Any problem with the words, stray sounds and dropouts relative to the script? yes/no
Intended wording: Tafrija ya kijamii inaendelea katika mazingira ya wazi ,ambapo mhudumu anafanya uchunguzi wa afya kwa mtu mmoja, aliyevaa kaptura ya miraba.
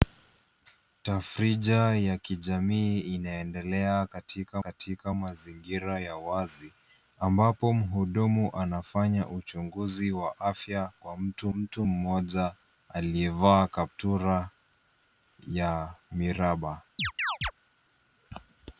yes